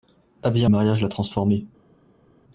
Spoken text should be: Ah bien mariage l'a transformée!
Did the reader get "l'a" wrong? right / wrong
right